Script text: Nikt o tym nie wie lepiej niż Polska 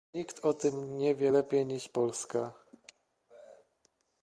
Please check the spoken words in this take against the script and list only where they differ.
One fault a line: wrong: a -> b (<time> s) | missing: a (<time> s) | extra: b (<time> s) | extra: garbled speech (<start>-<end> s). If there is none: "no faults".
no faults